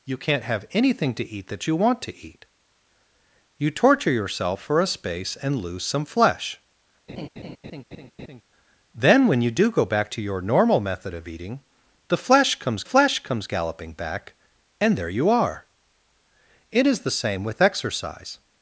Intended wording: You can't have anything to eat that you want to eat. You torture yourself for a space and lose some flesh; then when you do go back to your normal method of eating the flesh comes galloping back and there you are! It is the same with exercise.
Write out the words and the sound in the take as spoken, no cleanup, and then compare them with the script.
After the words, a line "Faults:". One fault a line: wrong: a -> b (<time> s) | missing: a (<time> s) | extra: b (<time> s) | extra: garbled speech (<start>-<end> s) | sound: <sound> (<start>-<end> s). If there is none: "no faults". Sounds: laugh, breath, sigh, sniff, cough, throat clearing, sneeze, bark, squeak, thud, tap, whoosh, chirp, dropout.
You can't have anything to eat that you want to eat. You torture yourself for a space and lose some flesh; then when you do go back to your normal method of eating the flesh comes flesh comes galloping back and there you are! It is the same with exercise.
Faults:
sound: laugh (7.1-8.4 s)
extra: flesh comes (12.8 s)